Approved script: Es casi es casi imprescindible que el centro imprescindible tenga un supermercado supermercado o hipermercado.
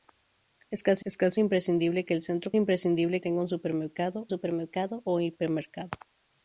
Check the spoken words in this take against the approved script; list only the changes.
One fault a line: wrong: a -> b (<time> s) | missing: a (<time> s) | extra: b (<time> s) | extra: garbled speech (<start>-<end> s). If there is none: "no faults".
no faults